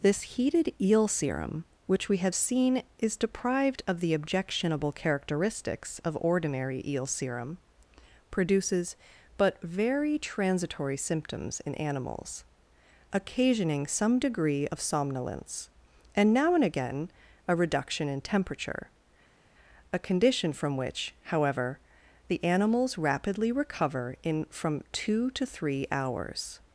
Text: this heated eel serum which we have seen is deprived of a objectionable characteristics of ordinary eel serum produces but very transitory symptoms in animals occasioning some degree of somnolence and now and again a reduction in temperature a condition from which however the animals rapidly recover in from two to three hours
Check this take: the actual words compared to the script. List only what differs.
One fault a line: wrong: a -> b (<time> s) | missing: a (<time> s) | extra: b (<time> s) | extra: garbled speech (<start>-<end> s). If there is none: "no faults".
wrong: a -> the (4.0 s)